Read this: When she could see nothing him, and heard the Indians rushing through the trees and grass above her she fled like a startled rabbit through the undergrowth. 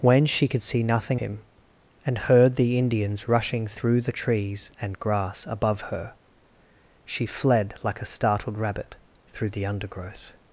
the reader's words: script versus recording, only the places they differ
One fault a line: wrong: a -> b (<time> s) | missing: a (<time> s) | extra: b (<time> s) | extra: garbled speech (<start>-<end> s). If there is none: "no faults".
no faults